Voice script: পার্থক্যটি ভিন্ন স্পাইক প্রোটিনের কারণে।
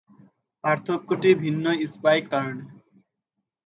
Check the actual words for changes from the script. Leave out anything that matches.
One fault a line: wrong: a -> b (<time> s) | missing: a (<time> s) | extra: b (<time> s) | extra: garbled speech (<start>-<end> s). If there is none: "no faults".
missing: প্রোটিনের (2.2 s)